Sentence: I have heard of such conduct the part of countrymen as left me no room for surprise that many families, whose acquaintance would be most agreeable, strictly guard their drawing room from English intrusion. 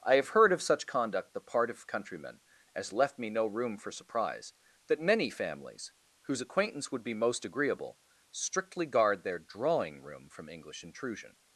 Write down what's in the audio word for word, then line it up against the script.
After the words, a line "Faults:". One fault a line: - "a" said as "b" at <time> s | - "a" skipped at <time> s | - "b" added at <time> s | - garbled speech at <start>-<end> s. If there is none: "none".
I have heard of such conduct the part of countrymen as left me no room for surprise that many families, whose acquaintance would be most agreeable, strictly guard their drawing room from English intrusion.
Faults:
none